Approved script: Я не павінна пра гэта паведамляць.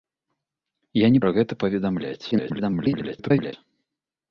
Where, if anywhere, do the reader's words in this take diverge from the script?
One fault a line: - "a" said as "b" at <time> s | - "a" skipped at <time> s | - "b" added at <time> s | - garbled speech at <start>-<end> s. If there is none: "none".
- "павінна" skipped at 1.2 s
- garbled speech at 2.3-3.5 s